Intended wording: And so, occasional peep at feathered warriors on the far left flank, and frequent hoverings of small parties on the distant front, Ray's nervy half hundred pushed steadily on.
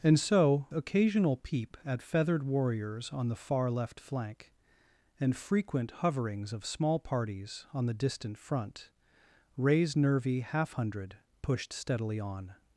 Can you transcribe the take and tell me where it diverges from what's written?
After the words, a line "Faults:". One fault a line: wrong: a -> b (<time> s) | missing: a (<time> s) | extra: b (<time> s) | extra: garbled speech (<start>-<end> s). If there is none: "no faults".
And so, occasional peep at feathered warriors on the far left flank, and frequent hoverings of small parties on the distant front, Ray's nervy half hundred pushed steadily on.
Faults:
no faults